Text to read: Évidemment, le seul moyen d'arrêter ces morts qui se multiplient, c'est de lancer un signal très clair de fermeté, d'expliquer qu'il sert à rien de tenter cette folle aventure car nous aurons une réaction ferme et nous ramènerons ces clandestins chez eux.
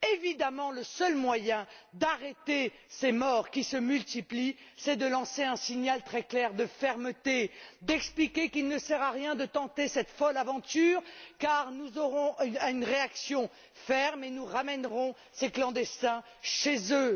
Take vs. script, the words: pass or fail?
fail